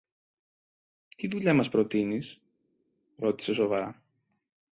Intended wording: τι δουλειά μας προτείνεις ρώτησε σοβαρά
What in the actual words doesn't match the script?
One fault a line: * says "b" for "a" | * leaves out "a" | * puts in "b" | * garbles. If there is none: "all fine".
all fine